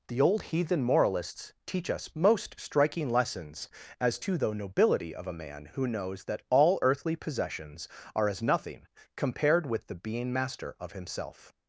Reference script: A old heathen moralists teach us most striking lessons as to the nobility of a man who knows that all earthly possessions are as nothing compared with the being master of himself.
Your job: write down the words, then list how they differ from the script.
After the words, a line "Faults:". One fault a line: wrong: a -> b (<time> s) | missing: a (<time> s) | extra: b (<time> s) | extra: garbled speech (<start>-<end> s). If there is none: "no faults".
The old heathen moralists teach us most striking lessons as to the nobility of a man who knows that all earthly possessions are as nothing compared with the being master of himself.
Faults:
wrong: A -> The (0.1 s)